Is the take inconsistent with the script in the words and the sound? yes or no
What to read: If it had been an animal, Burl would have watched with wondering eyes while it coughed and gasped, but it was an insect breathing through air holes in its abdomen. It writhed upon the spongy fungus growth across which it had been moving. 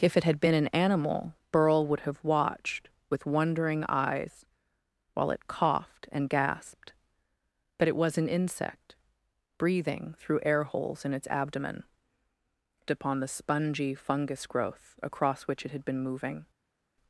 yes